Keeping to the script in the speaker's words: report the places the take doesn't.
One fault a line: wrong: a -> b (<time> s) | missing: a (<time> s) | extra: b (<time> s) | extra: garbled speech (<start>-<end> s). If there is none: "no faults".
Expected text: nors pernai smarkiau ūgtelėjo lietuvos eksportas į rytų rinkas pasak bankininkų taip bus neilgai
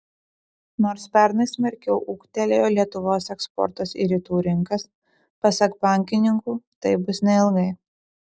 no faults